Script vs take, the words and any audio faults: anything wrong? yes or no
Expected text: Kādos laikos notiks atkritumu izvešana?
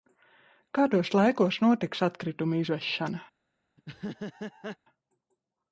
yes